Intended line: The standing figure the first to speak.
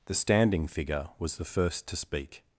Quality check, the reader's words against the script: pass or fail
fail